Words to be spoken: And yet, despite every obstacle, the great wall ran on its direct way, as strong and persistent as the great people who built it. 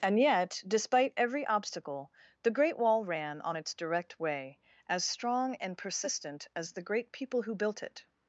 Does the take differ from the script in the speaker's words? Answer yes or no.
no